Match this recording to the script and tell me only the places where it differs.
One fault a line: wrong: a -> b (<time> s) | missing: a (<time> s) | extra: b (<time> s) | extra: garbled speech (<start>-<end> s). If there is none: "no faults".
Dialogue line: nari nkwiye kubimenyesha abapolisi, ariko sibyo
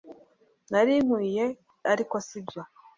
missing: kubimenyesha abapolisi (1.4 s)